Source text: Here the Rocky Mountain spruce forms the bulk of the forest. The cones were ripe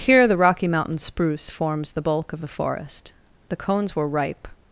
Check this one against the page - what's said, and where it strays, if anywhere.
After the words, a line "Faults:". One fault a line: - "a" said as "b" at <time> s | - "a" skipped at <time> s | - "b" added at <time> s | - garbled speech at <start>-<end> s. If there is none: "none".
Here the Rocky Mountain spruce forms the bulk of the forest. The cones were ripe
Faults:
none